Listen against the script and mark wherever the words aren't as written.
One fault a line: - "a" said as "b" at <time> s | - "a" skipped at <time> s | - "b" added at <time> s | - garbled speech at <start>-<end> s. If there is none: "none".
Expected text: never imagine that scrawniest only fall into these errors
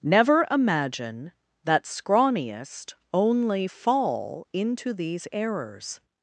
none